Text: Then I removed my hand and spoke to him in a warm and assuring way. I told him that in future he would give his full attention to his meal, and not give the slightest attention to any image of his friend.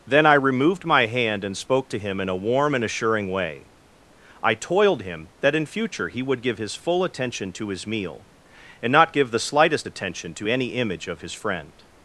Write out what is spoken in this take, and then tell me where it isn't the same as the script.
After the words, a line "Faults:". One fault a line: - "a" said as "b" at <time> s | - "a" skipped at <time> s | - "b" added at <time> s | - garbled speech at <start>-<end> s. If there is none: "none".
Then I removed my hand and spoke to him in a warm and assuring way. I toiled him that in future he would give his full attention to his meal, and not give the slightest attention to any image of his friend.
Faults:
- "told" said as "toiled" at 4.5 s